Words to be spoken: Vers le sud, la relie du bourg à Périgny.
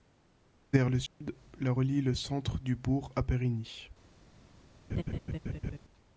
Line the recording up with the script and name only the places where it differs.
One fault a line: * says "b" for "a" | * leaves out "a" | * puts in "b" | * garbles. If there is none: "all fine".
* puts in "le centre"